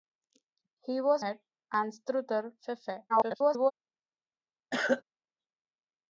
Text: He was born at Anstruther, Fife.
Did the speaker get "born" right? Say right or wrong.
wrong